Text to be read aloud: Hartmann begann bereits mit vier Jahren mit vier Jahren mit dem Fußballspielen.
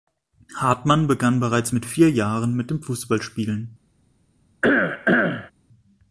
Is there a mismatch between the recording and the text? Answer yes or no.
yes